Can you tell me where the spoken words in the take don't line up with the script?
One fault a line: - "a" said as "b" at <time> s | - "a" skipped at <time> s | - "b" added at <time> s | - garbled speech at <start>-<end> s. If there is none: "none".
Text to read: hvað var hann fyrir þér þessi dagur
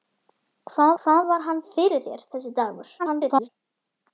- "hvað" added at 1.0 s
- garbled speech at 3.0-3.5 s